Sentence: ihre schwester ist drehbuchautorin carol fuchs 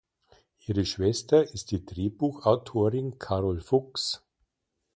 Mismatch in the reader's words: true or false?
true